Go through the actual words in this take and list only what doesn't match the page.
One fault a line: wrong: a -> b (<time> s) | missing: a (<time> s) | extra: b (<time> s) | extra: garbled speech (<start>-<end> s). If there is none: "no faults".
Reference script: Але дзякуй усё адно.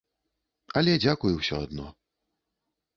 no faults